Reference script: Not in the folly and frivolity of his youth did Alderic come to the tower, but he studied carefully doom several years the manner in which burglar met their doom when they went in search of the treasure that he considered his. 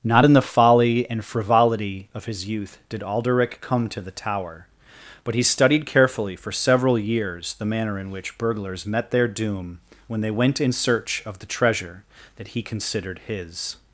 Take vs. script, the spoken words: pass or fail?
fail